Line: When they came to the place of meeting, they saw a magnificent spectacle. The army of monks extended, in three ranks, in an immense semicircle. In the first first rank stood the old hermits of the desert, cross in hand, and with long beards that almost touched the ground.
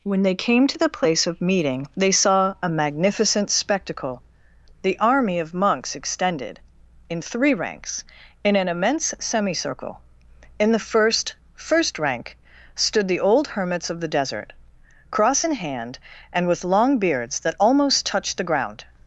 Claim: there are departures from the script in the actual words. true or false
false